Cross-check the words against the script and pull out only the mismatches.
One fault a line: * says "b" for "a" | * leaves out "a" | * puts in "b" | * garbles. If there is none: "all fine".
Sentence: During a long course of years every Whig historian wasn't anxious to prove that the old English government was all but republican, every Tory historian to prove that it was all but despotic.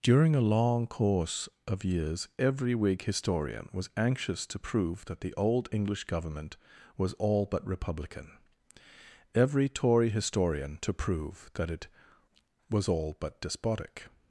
* says "was" for "wasn't"